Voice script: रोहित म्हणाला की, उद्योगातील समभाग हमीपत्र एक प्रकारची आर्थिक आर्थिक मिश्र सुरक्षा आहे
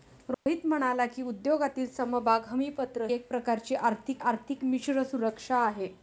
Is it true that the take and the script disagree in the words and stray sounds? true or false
true